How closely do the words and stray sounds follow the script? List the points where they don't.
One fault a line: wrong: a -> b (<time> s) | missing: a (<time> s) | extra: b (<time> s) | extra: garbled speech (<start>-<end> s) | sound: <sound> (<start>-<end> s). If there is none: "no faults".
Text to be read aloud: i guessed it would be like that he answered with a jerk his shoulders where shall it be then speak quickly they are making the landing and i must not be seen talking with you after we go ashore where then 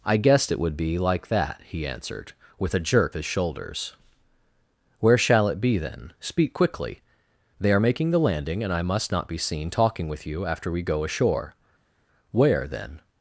no faults